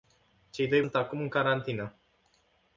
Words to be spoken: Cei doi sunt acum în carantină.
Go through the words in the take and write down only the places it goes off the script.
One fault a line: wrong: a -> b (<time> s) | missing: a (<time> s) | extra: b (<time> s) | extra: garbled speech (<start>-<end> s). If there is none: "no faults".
no faults